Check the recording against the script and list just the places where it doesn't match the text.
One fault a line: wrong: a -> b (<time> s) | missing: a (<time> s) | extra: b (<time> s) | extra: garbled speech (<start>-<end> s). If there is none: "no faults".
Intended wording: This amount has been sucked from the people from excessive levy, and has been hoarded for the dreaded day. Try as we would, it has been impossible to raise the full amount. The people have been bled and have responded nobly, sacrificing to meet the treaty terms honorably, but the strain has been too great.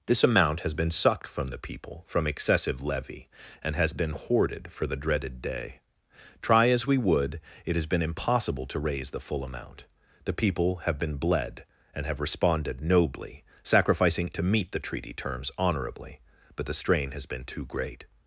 no faults